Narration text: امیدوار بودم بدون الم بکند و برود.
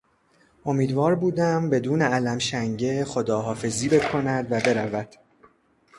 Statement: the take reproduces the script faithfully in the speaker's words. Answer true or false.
false